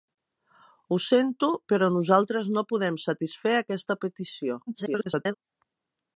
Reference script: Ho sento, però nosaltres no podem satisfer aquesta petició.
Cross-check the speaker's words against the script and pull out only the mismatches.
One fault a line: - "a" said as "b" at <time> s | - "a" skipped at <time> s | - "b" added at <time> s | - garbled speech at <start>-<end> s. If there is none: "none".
- garbled speech at 4.7-5.3 s